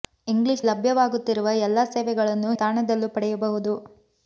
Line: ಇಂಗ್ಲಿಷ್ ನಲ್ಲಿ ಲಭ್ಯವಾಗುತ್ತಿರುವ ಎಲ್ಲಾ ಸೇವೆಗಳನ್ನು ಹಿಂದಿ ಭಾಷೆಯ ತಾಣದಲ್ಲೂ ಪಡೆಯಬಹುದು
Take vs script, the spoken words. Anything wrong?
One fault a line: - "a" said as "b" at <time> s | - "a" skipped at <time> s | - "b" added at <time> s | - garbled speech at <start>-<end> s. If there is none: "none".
- "ನಲ್ಲಿ" skipped at 0.6 s
- "ಹಿಂದಿ ಭಾಷೆಯ" skipped at 2.5 s